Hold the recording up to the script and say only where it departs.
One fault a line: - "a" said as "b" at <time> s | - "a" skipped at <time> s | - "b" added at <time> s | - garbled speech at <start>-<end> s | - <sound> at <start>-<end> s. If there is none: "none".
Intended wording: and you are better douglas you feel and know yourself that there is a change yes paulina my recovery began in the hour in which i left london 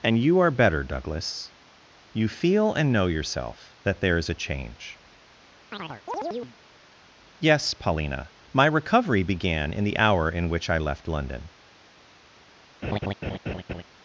- chirp at 5.7-6.6 s
- laugh at 12.8-13.8 s